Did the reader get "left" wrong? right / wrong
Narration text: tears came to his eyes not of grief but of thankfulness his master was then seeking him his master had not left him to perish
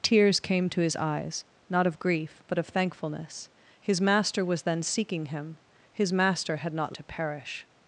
wrong